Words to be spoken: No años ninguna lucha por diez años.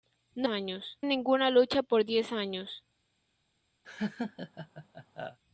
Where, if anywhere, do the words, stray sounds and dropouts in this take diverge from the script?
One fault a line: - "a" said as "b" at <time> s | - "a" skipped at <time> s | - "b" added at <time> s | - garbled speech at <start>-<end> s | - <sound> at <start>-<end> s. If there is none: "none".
- laugh at 3.8-5.4 s